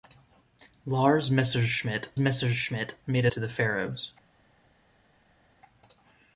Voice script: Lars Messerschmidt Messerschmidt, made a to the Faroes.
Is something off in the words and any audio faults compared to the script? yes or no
no